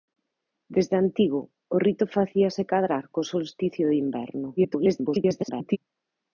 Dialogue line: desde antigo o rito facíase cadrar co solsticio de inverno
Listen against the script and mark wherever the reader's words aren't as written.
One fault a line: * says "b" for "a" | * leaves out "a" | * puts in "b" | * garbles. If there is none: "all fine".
* garbles